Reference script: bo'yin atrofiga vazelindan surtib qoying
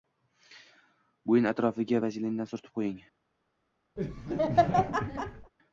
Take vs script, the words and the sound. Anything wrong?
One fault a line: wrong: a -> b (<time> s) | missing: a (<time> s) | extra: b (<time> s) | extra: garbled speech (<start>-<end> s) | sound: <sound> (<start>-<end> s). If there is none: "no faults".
sound: laugh (4.0-5.5 s)